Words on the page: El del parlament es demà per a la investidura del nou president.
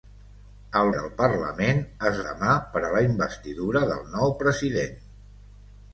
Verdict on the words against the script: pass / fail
pass